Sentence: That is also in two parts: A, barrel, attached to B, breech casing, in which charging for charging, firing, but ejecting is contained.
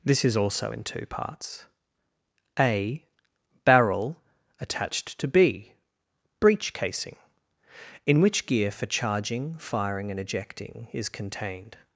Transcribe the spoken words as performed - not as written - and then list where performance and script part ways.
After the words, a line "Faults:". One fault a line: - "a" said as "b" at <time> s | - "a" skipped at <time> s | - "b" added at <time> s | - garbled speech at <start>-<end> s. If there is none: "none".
This is also in two parts: A, barrel, attached to B, breech casing, in which gear for charging, firing, and ejecting is contained.
Faults:
- "That" said as "This" at 0.0 s
- "charging" said as "gear" at 8.4 s
- "but" said as "and" at 10.1 s